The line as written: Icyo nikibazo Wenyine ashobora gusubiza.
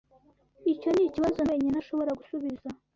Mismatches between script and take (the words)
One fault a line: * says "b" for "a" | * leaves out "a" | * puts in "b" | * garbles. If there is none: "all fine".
all fine